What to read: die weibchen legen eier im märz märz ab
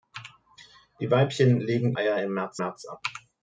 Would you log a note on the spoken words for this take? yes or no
no